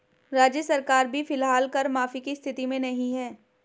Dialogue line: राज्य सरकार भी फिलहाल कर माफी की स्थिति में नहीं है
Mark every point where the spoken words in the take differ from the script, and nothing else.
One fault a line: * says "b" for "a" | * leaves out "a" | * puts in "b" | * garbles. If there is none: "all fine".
all fine